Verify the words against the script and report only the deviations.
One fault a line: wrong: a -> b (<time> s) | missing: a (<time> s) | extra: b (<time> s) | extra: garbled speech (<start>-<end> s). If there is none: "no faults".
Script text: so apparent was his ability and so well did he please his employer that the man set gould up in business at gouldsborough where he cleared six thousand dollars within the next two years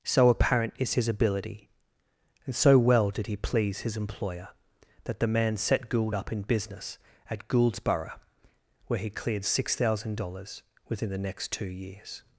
wrong: was -> is (0.8 s)